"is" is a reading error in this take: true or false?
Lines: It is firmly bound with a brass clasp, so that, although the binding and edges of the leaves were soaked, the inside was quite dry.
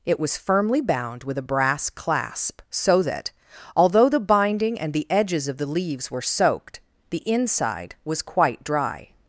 true